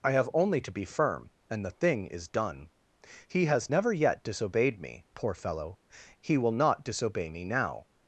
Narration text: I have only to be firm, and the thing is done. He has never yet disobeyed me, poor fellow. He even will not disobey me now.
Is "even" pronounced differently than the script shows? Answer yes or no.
yes